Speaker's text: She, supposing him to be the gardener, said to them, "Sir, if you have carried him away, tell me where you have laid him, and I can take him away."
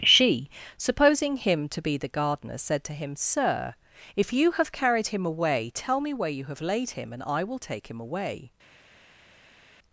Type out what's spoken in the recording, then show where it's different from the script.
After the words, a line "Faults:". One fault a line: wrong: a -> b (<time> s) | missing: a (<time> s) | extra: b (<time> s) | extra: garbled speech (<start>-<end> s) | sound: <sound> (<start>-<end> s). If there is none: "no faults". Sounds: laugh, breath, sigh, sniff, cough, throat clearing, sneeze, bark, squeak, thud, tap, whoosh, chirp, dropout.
She, supposing him to be the gardener, said to him, "Sir, if you have carried him away, tell me where you have laid him, and I will take him away."
Faults:
wrong: them -> him (2.9 s)
wrong: can -> will (7.4 s)